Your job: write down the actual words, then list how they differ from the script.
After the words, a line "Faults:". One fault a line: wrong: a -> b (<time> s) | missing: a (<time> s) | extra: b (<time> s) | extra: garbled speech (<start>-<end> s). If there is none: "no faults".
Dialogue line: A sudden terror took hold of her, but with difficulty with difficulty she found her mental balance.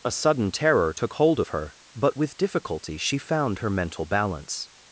A sudden terror took hold of her, but with difficulty she found her mental balance.
Faults:
missing: with difficulty (3.0 s)